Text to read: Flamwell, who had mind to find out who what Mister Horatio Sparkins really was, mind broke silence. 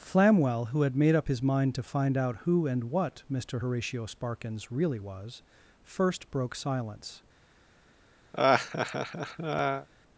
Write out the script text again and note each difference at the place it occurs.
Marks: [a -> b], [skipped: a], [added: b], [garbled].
Flamwell, who had [added: made up his] mind to find out who [added: and] what Mister Horatio Sparkins really was, [mind -> first] broke silence.